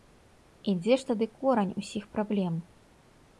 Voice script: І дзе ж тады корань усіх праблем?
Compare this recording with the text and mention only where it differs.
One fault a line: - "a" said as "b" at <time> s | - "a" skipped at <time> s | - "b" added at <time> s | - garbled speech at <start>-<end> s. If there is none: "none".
none